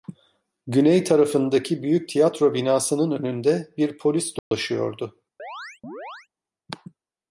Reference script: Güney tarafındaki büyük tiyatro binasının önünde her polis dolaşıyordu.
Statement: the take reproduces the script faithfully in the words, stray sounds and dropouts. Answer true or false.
false